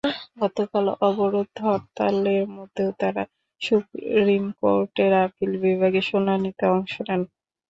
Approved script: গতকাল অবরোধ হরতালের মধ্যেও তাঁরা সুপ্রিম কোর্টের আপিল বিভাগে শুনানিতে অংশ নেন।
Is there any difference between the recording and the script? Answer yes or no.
no